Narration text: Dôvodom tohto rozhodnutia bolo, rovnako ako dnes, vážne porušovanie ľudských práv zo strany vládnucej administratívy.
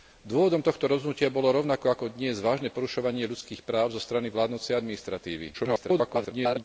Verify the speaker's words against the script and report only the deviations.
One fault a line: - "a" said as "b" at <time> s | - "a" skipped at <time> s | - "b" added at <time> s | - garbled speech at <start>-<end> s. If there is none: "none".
- garbled speech at 5.5-6.6 s